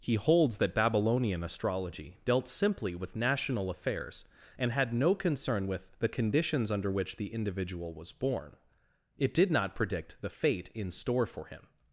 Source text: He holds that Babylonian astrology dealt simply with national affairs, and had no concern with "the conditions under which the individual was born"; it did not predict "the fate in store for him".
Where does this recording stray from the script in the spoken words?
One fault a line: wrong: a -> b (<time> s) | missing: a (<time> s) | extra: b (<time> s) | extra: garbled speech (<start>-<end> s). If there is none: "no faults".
no faults